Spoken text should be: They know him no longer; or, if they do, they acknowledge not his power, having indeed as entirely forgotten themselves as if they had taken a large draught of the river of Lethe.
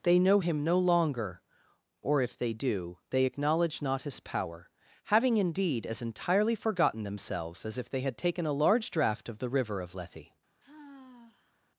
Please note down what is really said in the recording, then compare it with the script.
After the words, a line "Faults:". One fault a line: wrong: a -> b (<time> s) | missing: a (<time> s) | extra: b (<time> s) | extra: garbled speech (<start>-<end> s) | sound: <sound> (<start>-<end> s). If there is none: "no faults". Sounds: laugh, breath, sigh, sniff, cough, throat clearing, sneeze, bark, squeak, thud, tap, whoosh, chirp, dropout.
They know him no longer; or, if they do, they acknowledge not his power, having indeed as entirely forgotten themselves as if they had taken a large draught of the river of Lethe.
Faults:
sound: sigh (10.6-11.6 s)